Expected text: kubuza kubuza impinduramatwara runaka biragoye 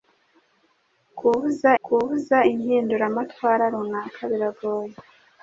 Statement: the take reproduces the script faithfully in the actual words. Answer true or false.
true